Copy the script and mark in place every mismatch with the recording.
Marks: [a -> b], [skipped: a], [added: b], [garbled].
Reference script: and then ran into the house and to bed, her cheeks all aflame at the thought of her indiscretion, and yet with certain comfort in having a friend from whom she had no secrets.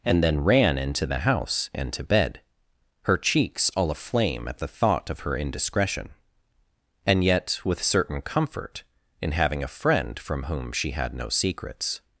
and then ran into the house and to bed, her cheeks all aflame at the thought of her indiscretion, and yet with certain comfort in having a friend from whom she had no secrets.